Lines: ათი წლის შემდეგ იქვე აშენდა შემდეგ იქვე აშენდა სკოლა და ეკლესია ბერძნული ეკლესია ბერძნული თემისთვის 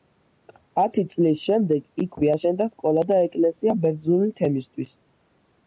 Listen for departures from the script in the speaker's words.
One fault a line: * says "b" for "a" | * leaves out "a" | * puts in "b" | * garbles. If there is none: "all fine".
* leaves out "შემდეგ იქვე აშენდა"
* leaves out "ეკლესია ბერძნული"